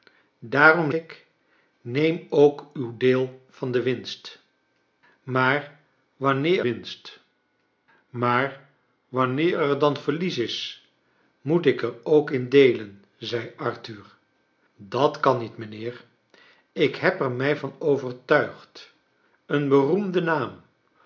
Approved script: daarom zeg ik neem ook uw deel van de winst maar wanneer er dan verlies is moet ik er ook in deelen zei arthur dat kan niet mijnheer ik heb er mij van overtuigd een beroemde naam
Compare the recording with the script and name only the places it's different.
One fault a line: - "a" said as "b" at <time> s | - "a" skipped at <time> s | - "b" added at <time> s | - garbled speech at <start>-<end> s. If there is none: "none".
- "zeg" skipped at 0.9 s
- "winst maar wanneer" added at 6.6 s